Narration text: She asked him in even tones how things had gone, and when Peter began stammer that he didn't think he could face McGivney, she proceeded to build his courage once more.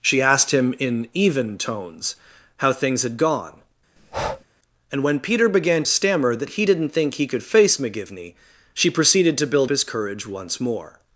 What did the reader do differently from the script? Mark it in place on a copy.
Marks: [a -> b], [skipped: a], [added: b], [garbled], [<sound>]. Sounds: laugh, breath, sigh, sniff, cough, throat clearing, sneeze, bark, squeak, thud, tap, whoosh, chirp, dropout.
She asked him in even tones how things had gone, [breath] and when Peter began stammer that he didn't think he could face McGivney, she proceeded to build his courage once more.